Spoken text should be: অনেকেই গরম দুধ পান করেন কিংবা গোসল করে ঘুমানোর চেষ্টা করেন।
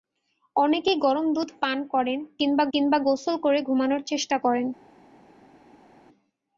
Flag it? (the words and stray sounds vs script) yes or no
yes